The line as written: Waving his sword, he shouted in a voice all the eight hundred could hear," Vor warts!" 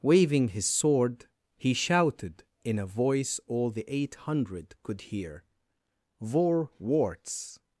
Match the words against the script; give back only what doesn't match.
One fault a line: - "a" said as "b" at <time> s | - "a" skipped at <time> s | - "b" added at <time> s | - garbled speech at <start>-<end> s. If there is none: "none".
none